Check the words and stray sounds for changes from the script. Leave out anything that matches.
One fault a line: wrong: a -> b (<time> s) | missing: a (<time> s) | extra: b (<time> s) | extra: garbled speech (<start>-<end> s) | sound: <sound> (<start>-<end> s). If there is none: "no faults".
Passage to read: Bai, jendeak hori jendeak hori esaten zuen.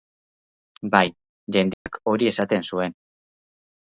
sound: dropout (1.7-1.9 s)
missing: jendeak hori (2.3 s)